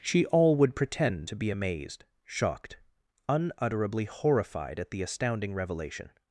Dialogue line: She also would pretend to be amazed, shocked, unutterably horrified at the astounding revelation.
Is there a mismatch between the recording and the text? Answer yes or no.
yes